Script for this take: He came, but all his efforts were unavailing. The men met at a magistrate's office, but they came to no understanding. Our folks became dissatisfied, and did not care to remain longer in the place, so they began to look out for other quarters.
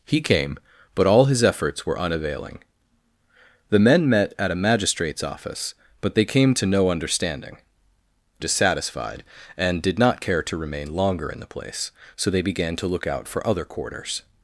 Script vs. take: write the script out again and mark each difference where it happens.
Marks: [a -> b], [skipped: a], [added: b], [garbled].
He came, but all his efforts were unavailing. The men met at a magistrate's office, but they came to no understanding. [skipped: Our folks became] dissatisfied, and did not care to remain longer in the place, so they began to look out for other quarters.